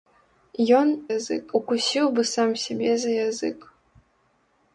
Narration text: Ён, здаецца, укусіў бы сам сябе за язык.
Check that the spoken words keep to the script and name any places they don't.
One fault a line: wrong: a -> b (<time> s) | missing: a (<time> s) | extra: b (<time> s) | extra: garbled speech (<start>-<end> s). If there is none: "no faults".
wrong: здаецца -> язык (1.2 s)